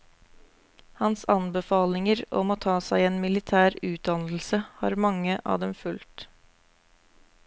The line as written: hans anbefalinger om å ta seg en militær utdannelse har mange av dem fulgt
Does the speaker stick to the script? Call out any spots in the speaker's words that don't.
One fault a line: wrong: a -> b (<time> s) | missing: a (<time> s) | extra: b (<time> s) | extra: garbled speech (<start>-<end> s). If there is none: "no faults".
no faults